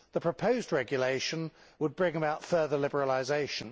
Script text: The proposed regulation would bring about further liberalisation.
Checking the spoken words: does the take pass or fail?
pass